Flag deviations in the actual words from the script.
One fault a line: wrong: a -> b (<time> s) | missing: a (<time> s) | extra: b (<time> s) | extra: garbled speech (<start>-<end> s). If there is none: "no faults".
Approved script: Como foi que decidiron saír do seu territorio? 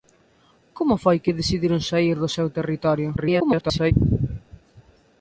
extra: garbled speech (3.2-3.9 s)